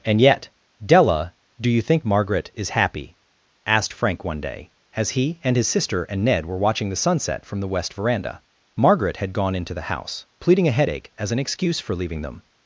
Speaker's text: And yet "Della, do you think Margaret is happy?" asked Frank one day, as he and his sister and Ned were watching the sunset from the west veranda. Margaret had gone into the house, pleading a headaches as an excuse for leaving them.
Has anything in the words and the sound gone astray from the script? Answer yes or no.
yes